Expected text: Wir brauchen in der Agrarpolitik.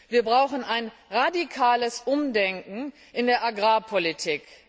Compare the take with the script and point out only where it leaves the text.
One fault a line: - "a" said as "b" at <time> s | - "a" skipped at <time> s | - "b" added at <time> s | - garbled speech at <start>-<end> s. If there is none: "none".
- "ein radikales Umdenken" added at 0.6 s